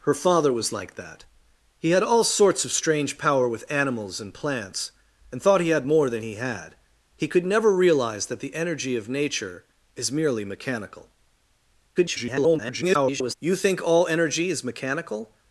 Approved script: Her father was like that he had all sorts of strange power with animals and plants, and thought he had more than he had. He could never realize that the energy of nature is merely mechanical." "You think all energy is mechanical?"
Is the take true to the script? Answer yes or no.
no